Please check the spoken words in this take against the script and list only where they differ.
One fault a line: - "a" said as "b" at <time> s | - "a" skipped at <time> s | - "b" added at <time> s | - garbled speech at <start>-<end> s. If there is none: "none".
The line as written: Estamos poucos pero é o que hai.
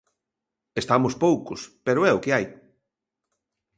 none